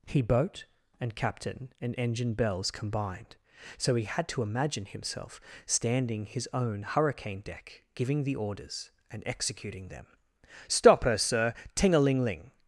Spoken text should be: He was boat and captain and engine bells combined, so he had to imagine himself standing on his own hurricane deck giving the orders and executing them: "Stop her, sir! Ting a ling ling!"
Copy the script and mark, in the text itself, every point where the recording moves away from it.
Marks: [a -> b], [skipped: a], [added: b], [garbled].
He [skipped: was] boat and captain and engine bells combined, so he had to imagine himself standing [skipped: on] his own hurricane deck giving the orders and executing them: "Stop her, sir! Ting a ling ling!"